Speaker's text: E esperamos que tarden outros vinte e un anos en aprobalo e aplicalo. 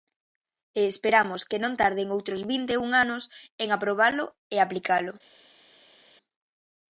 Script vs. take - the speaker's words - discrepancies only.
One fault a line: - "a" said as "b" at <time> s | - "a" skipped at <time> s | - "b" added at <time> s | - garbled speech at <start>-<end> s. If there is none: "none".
- "non" added at 1.6 s